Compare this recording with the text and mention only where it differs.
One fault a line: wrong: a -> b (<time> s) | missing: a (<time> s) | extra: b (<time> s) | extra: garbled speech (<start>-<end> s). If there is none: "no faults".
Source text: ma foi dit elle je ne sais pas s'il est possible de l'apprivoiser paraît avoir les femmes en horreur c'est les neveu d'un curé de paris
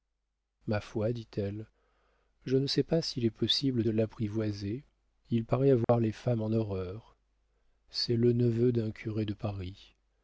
extra: il (5.3 s)
wrong: les -> le (8.1 s)